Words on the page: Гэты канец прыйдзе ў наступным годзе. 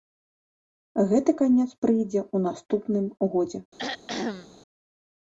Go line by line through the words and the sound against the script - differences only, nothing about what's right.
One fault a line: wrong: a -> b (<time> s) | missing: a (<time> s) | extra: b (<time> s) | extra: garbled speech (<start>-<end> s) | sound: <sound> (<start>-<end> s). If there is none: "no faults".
sound: throat clearing (3.8-4.6 s)